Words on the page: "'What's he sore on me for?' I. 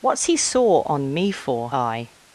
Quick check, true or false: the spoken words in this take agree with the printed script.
true